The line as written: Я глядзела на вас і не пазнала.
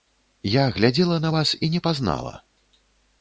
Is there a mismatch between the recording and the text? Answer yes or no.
no